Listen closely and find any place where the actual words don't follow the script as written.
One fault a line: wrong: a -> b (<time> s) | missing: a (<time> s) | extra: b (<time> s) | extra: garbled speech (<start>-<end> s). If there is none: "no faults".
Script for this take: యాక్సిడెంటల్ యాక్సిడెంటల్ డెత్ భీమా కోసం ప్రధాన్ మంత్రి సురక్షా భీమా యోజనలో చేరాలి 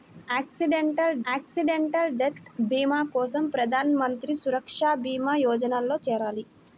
no faults